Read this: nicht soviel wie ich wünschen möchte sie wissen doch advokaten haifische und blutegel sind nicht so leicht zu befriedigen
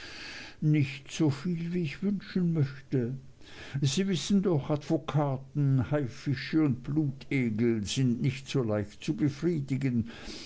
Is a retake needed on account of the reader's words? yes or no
no